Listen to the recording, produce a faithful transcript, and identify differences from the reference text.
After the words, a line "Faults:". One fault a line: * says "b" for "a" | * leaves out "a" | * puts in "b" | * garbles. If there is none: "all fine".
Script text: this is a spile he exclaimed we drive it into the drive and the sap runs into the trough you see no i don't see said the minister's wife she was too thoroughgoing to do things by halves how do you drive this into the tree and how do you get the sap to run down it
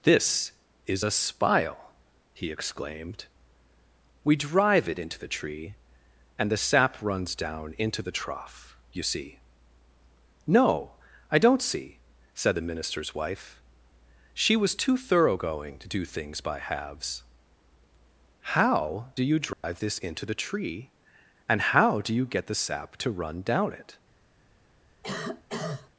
this is a spile he exclaimed we drive it into the tree and the sap runs down into the trough you see no i don't see said the minister's wife she was too thoroughgoing to do things by halves how do you drive this into the tree and how do you get the sap to run down it
Faults:
* says "tree" for "drive"
* puts in "down"